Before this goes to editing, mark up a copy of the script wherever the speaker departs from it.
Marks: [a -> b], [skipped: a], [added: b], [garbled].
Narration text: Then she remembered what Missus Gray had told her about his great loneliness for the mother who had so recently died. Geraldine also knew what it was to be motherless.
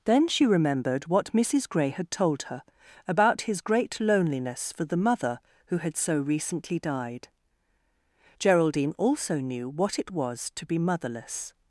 Then she remembered what Missus Gray had told her about his great loneliness for the mother who had so recently died. Geraldine also knew what it was to be motherless.